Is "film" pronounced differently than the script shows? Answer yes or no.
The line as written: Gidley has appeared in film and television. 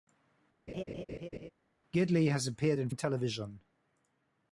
yes